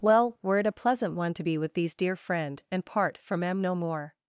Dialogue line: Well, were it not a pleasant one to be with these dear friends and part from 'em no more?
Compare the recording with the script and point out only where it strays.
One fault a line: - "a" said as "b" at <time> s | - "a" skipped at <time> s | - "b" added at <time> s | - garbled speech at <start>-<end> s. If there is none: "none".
- "not" skipped at 0.7 s
- "friends" said as "friend" at 2.2 s